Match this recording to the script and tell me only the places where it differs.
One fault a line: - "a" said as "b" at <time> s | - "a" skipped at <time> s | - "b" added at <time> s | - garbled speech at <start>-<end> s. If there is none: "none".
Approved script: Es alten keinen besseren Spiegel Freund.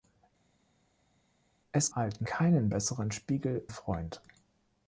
none